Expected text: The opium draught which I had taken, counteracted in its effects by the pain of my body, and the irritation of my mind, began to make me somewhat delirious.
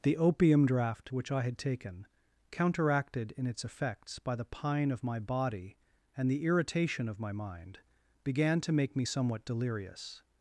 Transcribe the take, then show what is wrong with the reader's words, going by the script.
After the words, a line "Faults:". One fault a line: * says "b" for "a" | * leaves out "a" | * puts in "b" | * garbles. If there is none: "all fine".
The opium draught which I had taken, counteracted in its effects by the pine of my body, and the irritation of my mind, began to make me somewhat delirious.
Faults:
* says "pine" for "pain"